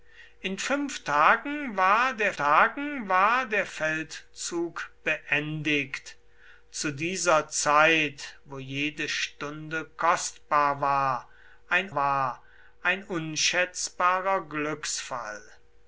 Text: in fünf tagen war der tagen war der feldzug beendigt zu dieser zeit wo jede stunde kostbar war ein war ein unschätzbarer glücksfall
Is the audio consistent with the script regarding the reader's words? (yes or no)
yes